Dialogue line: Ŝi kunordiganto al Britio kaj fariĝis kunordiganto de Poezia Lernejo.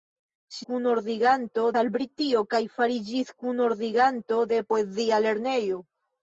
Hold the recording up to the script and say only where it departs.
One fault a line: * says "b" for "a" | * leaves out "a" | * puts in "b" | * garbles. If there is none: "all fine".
all fine